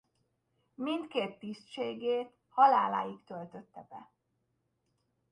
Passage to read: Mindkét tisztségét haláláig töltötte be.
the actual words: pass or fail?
pass